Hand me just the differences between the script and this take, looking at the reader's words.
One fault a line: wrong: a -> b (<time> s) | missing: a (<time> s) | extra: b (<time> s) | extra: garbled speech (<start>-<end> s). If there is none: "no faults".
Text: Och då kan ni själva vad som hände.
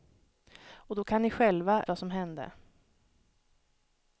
no faults